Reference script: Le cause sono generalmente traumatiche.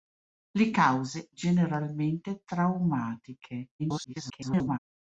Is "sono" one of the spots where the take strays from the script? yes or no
yes